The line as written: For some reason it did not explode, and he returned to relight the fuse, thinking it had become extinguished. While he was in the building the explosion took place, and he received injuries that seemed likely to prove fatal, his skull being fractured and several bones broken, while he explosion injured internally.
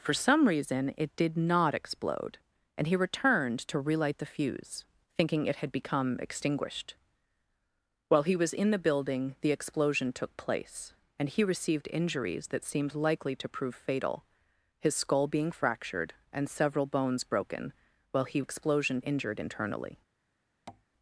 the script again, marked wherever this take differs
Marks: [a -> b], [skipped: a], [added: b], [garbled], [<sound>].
For some reason it did not explode, and he returned to relight the fuse, thinking it had become extinguished. While he was in the building the explosion took place, and he received injuries that seemed likely to prove fatal, his skull being fractured and several bones broken, while he explosion injured internally. [tap]